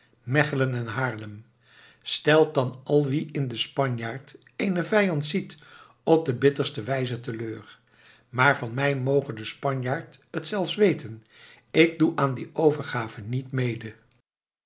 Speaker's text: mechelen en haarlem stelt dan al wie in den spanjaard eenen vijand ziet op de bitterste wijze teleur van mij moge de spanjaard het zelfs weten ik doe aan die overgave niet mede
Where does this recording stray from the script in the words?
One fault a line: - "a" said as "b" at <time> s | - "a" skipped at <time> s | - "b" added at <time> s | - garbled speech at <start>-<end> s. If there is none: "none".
- "maar" added at 8.3 s